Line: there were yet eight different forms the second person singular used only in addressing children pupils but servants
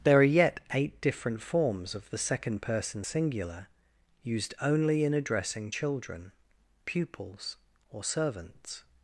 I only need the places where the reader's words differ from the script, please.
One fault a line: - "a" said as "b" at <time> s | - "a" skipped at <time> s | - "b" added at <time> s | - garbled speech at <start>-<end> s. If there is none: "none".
- "were" said as "are" at 0.2 s
- "of" added at 1.9 s
- "but" said as "or" at 7.9 s